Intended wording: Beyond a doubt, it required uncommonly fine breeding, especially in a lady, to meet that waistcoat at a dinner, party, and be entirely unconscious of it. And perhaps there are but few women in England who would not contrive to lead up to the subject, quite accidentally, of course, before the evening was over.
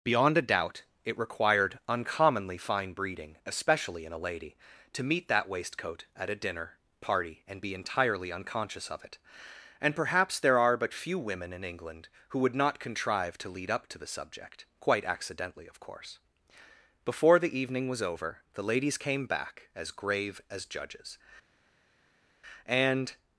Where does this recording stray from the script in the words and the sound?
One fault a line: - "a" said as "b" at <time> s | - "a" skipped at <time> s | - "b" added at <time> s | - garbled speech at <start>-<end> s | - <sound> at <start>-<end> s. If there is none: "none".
- "The ladies came back as grave as judges and" added at 18.5 s